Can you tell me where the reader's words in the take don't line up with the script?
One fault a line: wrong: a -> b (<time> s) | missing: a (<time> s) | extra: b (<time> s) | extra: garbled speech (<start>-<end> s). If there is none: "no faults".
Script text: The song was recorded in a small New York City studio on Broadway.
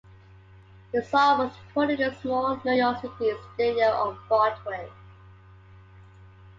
no faults